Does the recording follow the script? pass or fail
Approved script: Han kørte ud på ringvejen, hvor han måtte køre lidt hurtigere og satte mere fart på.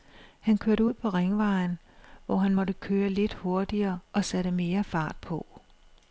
pass